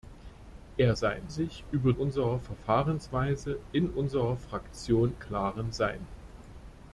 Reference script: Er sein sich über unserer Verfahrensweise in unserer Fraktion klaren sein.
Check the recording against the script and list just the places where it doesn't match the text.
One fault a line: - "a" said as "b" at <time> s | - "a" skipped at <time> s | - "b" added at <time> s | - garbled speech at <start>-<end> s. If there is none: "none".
none